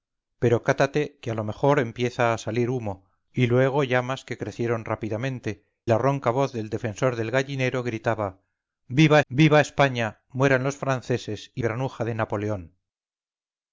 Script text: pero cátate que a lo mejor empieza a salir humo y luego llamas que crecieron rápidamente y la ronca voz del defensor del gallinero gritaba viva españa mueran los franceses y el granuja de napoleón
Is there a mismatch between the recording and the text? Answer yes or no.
yes